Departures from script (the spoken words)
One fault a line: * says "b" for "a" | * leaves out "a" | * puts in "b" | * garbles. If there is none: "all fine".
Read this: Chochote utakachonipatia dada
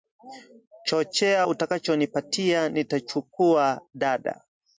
* puts in "nitachukua"